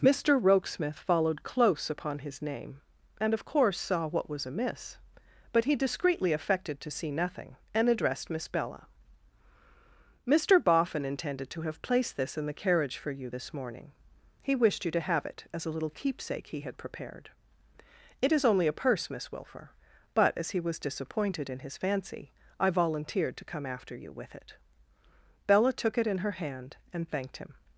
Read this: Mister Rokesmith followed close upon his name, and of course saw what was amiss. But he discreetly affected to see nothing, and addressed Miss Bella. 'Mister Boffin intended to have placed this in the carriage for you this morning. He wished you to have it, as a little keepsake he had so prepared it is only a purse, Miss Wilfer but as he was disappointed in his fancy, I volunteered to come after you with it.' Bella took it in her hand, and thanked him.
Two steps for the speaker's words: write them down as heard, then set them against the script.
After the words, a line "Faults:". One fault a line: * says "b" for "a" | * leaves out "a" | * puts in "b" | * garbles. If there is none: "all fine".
Mister Rokesmith followed close upon his name, and of course saw what was amiss. But he discreetly affected to see nothing, and addressed Miss Bella. 'Mister Boffin intended to have placed this in the carriage for you this morning. He wished you to have it, as a little keepsake he had prepared it is only a purse, Miss Wilfer but as he was disappointed in his fancy, I volunteered to come after you with it.' Bella took it in her hand, and thanked him.
Faults:
* leaves out "so"